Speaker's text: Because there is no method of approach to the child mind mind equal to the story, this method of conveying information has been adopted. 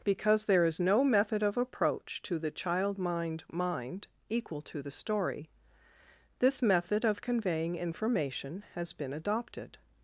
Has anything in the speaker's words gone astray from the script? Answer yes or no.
no